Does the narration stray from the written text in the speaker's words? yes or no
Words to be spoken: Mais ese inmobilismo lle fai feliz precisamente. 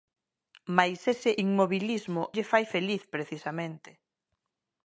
no